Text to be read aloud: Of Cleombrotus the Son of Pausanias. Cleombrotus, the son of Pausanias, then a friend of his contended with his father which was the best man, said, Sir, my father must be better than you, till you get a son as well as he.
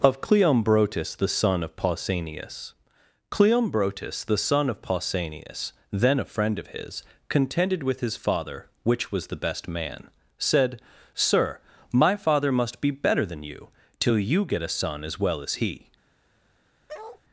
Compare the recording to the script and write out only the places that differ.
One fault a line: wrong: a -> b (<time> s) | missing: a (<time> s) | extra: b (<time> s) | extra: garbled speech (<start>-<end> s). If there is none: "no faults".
no faults